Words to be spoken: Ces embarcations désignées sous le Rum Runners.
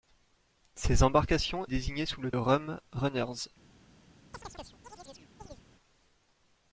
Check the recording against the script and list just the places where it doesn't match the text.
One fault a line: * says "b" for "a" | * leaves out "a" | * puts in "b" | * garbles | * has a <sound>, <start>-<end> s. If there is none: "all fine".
* has a chirp, 4.3-5.6 s